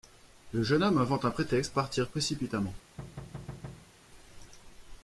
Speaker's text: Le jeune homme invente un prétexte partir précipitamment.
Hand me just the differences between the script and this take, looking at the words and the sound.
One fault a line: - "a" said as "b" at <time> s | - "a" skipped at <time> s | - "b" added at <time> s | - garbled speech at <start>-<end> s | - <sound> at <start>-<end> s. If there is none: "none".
- thud at 3.0-3.9 s